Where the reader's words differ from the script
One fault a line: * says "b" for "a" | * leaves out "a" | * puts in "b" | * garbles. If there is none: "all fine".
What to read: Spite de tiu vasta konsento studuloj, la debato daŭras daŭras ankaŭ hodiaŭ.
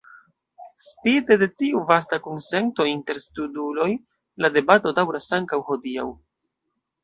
* puts in "inter"
* leaves out "daŭras"